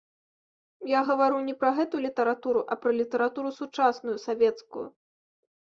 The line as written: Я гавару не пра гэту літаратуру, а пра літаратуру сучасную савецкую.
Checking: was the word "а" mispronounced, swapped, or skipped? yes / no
no